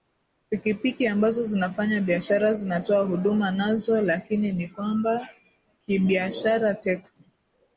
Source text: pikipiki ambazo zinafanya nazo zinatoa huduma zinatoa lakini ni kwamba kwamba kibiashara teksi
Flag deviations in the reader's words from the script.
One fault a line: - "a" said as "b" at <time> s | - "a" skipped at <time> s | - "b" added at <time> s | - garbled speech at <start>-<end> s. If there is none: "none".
- "nazo" said as "biashara" at 2.0 s
- "zinatoa" said as "nazo" at 3.5 s
- "kwamba" skipped at 5.3 s